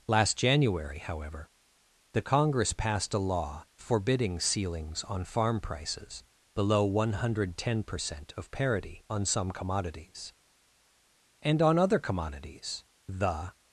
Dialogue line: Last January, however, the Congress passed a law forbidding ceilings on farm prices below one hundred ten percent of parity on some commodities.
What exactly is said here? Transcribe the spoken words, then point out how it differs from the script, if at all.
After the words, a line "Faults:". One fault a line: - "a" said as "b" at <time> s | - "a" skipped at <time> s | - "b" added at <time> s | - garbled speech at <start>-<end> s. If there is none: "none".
Last January, however, the Congress passed a law forbidding ceilings on farm prices below one hundred ten percent of parity on some commodities. And on other commodities the
Faults:
- "And on other commodities the" added at 11.4 s